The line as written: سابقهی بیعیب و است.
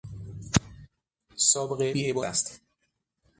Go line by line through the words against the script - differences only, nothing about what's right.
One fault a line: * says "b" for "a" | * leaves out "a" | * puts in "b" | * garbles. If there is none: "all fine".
all fine